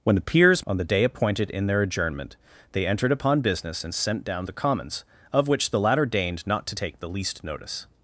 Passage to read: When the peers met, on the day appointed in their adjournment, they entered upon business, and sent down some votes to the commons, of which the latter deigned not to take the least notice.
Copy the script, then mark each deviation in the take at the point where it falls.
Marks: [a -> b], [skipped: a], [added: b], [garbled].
When the peers [skipped: met,] on the day appointed in their adjournment, they entered upon business, and sent down [skipped: some votes to] the commons, of which the latter deigned not to take the least notice.